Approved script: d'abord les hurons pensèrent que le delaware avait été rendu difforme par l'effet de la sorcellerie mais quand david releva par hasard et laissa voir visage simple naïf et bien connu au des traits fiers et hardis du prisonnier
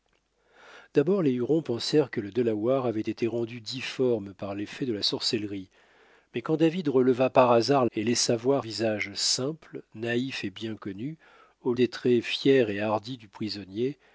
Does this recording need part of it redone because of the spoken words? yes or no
no